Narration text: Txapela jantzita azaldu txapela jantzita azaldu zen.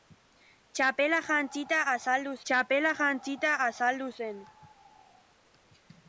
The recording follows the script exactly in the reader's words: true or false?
true